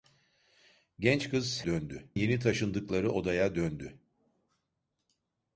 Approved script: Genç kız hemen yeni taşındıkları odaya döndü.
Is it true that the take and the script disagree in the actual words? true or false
true